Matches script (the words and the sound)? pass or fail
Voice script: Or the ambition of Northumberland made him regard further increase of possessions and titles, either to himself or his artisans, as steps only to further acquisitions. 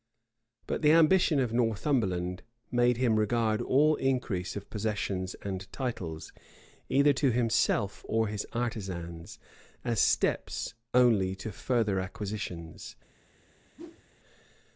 fail